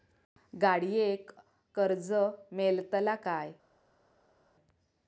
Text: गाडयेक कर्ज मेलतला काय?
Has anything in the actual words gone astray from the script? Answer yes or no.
no